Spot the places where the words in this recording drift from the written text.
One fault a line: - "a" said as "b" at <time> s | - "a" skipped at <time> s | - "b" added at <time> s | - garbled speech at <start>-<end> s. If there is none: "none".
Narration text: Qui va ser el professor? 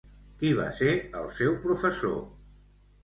- "seu" added at 1.4 s